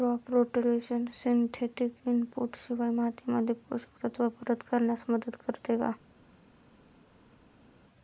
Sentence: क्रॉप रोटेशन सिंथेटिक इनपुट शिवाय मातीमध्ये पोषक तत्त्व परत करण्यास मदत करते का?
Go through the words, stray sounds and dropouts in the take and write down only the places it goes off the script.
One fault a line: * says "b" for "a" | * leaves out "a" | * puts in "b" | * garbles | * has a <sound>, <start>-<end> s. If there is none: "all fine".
all fine